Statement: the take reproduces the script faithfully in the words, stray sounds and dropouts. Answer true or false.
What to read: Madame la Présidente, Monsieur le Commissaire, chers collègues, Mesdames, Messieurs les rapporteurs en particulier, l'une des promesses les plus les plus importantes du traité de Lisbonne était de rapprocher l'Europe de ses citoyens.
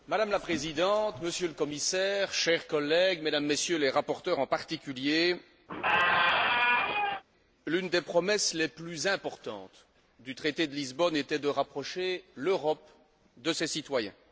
false